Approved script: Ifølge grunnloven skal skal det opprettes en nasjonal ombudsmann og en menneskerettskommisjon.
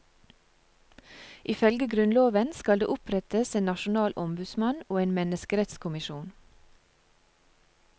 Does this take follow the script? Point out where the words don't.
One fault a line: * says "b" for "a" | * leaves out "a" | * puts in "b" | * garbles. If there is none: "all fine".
* leaves out "skal"